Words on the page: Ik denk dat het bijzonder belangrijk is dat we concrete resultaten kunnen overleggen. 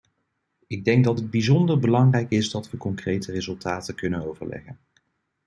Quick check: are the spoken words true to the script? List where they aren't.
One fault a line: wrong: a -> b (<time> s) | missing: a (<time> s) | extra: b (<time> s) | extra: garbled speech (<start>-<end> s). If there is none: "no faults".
no faults